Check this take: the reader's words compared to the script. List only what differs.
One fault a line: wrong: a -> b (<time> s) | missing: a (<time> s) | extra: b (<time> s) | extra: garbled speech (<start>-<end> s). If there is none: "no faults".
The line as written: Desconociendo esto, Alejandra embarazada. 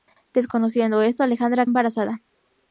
no faults